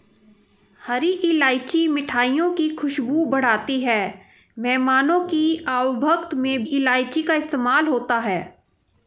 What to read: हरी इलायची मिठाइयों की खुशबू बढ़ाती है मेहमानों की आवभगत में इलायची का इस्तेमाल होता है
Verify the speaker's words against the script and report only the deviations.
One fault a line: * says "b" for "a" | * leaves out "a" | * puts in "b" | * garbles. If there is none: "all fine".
all fine